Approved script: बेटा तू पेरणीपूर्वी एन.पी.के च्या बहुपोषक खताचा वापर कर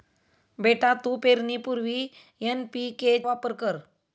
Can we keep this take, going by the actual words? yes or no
no